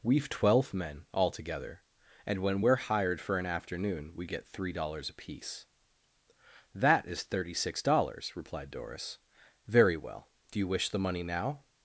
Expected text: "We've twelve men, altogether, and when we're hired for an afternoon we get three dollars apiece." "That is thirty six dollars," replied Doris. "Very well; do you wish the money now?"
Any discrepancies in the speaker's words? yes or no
no